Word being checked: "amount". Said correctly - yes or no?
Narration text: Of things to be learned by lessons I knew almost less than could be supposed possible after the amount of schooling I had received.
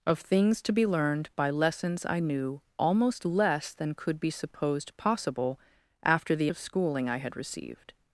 no